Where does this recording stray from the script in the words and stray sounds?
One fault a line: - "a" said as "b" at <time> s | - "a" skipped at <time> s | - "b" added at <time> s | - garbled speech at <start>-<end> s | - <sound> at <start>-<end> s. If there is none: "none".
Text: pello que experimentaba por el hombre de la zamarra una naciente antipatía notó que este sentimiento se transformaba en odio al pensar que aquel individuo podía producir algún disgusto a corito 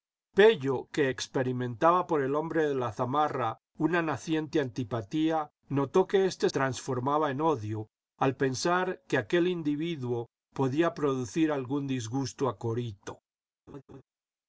- "sentimiento se" skipped at 6.5 s
- laugh at 13.7-14.0 s